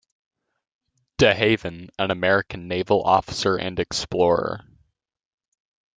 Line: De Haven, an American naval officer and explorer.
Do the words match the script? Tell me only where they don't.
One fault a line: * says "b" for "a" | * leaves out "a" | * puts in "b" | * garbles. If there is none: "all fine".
all fine